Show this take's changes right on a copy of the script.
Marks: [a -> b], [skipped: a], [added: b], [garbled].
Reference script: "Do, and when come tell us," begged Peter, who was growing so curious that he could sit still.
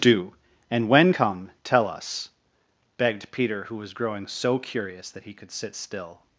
"Do, and when come tell us," begged Peter, who was growing so curious that he could sit still.